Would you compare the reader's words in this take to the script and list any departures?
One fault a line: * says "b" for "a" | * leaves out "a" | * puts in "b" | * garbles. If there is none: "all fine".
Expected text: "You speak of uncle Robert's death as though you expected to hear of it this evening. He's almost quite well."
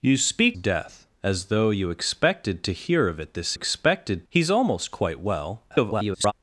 * leaves out "of uncle Robert's"
* says "expected" for "evening"
* garbles